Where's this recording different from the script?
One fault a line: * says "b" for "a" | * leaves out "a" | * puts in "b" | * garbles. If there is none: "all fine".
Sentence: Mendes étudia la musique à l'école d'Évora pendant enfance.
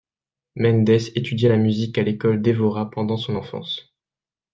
* puts in "son"